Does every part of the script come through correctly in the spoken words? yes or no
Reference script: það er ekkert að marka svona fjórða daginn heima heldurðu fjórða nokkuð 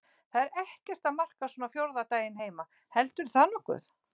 no